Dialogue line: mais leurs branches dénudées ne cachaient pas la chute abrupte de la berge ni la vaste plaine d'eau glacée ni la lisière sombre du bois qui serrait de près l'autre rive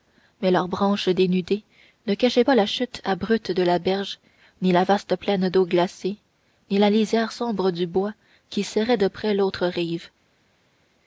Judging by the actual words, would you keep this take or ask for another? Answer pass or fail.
pass